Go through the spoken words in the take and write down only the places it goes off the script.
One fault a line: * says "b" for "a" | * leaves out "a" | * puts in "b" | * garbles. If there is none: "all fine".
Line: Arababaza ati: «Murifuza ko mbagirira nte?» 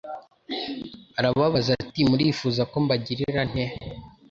all fine